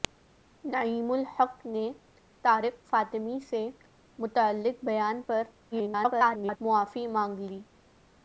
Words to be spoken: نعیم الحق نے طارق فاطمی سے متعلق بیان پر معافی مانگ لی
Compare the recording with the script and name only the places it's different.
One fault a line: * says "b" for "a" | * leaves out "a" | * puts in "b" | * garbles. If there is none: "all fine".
* garbles